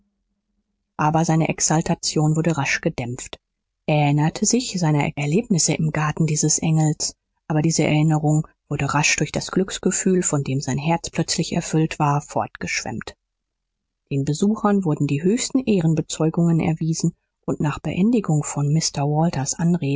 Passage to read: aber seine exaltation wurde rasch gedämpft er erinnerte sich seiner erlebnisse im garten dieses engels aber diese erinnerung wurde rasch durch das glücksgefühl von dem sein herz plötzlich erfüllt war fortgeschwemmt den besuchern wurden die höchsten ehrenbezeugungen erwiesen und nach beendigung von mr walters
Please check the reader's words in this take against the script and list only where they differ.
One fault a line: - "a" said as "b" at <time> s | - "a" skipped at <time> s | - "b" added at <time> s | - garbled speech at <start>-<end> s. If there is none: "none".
none